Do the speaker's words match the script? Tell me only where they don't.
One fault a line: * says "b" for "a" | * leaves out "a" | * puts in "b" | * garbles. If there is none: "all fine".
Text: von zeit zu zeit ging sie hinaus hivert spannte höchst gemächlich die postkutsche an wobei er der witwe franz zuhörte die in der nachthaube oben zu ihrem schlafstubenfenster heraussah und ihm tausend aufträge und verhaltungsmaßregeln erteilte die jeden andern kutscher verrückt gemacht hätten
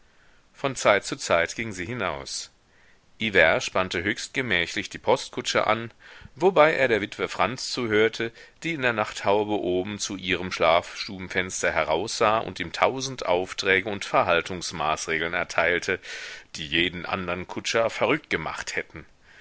all fine